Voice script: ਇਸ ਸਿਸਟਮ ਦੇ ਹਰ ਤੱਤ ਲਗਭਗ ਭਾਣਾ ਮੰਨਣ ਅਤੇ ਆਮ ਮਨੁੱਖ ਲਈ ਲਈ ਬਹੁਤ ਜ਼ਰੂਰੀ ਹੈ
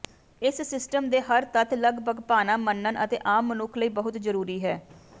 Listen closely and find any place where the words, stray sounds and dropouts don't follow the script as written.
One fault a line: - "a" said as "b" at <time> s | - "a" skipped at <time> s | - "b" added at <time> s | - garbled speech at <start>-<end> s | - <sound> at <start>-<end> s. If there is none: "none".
- "ਲਈ" skipped at 3.9 s